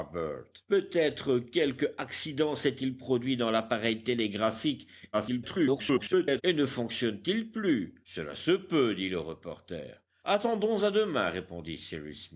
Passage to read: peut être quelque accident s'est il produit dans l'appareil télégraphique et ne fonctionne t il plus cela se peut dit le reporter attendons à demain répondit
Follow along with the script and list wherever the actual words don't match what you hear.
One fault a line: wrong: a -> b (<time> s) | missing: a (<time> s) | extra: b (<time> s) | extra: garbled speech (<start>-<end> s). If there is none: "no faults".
extra: garbled speech (5.1-6.4 s)